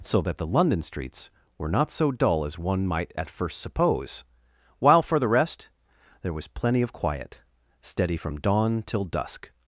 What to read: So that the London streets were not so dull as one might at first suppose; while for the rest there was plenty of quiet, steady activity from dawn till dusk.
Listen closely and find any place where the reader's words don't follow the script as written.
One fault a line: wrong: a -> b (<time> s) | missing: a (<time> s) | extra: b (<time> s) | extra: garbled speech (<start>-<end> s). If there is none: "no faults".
missing: activity (8.1 s)